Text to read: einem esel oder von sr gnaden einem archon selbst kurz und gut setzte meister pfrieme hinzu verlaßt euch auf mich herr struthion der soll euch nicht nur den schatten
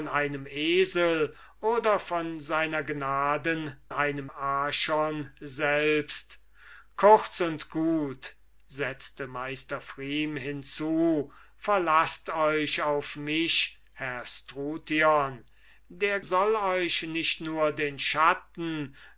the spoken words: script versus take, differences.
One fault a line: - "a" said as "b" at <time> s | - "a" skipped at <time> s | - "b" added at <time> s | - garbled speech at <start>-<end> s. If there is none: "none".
none